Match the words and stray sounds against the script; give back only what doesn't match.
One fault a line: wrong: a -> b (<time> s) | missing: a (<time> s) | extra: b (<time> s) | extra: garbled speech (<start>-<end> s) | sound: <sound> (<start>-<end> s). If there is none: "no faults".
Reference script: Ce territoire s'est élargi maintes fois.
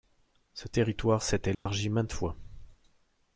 sound: dropout (1.5-1.7 s)